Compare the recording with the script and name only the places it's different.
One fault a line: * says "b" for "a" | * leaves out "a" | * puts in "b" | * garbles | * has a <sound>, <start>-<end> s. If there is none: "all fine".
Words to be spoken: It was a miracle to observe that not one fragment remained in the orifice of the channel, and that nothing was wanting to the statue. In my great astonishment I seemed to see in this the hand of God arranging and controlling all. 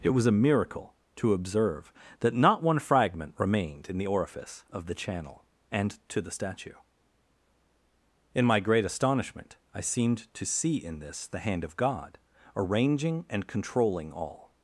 * leaves out "that nothing was wanting"